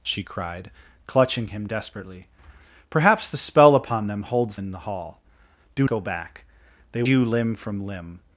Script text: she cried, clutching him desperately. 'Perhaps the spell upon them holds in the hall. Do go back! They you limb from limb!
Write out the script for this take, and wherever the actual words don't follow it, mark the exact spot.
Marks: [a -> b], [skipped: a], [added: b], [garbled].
she cried, clutching him desperately. 'Perhaps the spell upon them holds in the hall. Do go back! They you limb from limb!